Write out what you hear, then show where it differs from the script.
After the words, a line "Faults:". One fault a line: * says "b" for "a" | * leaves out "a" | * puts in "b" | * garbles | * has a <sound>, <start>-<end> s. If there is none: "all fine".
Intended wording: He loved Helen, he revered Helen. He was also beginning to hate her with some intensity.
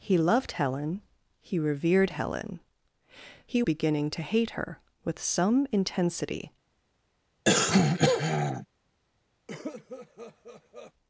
He loved Helen, he revered Helen. He beginning to hate her with some intensity.
Faults:
* leaves out "was also"
* has a throat clearing, 7.4-8.7 s
* has a cough, 9.5-10.9 s